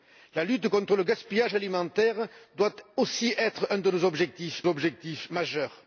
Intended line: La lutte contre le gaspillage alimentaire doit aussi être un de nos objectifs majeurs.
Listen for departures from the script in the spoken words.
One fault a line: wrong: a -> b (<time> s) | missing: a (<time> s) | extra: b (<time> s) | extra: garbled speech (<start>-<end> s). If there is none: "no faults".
extra: objectifs (4.7 s)